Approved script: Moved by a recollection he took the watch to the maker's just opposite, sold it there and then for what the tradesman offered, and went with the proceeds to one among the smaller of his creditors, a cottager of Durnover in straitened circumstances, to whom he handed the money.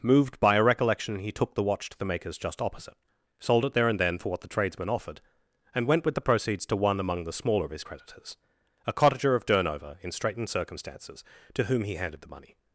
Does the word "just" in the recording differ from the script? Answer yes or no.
no